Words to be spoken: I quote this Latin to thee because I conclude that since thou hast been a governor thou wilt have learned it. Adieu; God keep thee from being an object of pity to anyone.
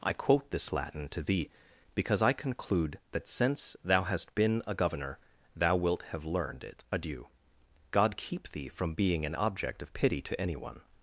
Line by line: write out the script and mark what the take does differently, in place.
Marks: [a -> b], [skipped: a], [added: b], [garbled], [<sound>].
I quote this Latin to thee because I conclude that since thou hast been a governor thou wilt have learned it. Adieu; God keep thee from being an object of pity to anyone.